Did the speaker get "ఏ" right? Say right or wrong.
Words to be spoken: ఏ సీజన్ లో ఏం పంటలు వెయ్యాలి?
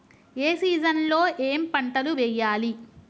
right